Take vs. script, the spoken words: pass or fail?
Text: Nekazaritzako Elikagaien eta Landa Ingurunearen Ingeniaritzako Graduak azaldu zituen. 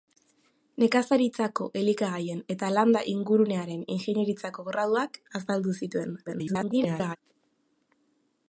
fail